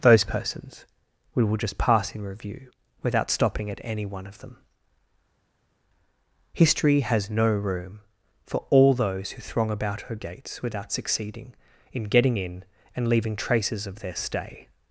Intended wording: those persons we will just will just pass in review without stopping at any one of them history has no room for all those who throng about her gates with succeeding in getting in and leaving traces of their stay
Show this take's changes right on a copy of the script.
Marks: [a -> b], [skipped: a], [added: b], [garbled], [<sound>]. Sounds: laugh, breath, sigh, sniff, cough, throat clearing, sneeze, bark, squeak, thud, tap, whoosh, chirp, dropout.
those persons we will just [skipped: will just] pass in review without stopping at any one of them history has no room for all those who throng about her gates [with -> without] succeeding in getting in and leaving traces of their stay